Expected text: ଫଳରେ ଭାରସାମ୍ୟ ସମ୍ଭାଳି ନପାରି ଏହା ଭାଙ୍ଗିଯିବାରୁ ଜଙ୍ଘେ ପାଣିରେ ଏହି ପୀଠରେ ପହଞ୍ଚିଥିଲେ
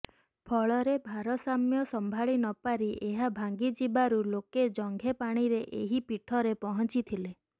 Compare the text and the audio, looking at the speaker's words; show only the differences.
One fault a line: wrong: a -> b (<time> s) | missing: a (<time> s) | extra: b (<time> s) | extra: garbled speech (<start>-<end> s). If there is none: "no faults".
extra: ଲୋକେ (4.3 s)